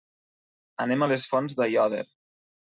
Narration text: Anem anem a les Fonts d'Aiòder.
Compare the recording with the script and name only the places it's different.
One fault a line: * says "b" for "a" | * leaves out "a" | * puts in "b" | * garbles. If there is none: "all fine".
* leaves out "anem"